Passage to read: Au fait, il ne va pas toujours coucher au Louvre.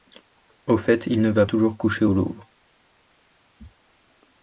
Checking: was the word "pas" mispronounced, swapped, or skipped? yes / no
yes